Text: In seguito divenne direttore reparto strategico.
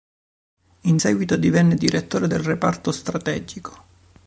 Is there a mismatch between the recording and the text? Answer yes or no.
yes